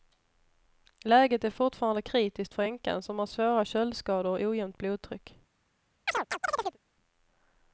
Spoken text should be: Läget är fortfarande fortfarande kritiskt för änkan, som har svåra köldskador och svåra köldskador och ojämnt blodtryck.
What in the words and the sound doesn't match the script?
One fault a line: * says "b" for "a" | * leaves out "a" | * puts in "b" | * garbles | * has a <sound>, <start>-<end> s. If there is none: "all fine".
* leaves out "fortfarande"
* leaves out "svåra köldskador och"
* has a chirp, 6.1-6.8 s